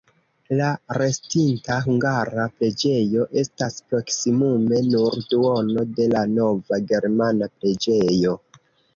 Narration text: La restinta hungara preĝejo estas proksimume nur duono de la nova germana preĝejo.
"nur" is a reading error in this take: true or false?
false